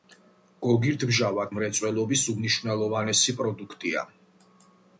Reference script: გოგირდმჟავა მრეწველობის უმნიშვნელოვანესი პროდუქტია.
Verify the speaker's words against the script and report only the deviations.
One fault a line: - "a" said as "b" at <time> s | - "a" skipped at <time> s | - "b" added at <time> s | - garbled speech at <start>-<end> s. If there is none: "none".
none